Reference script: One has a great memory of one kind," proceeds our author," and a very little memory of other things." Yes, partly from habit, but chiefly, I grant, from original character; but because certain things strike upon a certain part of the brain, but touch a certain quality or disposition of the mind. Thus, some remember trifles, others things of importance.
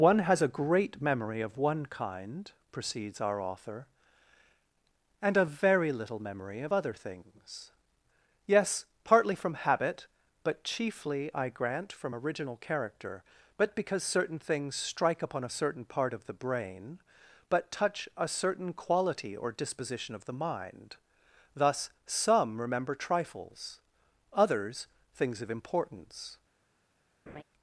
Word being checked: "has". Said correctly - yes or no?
yes